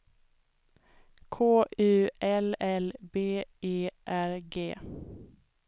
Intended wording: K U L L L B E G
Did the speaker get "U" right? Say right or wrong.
right